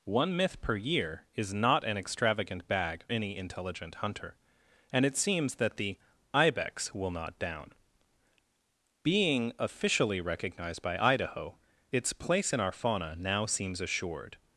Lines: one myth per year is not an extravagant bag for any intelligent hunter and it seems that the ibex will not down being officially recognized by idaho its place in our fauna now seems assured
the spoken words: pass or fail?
fail